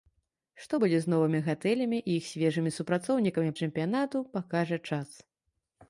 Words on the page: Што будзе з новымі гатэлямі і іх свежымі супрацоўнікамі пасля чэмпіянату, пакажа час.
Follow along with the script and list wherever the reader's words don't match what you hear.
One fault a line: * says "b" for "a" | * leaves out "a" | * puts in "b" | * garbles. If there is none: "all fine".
* leaves out "пасля"